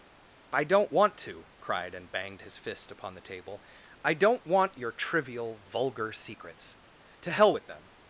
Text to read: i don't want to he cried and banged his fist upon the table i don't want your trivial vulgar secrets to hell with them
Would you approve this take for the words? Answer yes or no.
no